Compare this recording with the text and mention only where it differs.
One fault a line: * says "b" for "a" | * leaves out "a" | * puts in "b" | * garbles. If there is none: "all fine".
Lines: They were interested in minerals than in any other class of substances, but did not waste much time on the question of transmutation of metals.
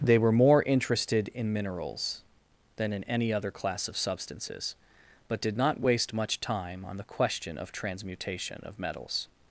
* puts in "more"